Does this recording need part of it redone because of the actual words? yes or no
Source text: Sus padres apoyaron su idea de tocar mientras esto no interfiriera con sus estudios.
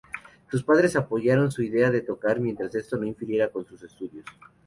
no